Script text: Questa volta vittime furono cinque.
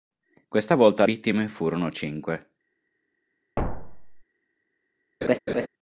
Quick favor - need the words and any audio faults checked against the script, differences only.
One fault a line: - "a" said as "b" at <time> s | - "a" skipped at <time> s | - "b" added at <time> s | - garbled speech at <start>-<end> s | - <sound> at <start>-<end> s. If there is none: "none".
- thud at 3.6-4.2 s
- laugh at 5.2-5.7 s